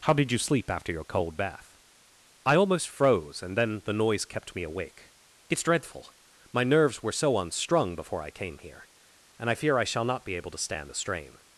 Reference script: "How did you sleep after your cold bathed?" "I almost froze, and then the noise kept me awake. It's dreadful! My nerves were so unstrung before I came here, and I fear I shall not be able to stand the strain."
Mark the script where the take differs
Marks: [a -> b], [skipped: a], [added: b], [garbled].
"How did you sleep after your cold [bathed?" -> bath] "I almost froze, and then the noise kept me awake. It's dreadful! My nerves were so unstrung before I came here, and I fear I shall not be able to stand the strain."